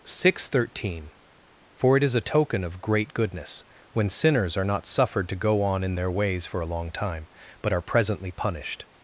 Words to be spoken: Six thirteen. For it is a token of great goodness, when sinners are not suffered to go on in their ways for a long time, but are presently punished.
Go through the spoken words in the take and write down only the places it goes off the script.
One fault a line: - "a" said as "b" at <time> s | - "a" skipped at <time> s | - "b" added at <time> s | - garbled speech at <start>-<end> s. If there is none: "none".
none